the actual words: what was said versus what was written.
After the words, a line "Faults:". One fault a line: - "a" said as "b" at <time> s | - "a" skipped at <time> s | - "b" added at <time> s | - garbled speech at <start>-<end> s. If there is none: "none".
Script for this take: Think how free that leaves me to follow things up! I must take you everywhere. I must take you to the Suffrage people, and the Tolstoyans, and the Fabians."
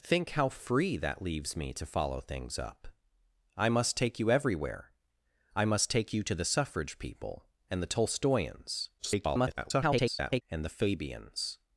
Think how free that leaves me to follow things up! I must take you everywhere. I must take you to the Suffrage people, and the Tolstoyans, [garbled] and the Fabians."
Faults:
- garbled speech at 9.0-10.4 s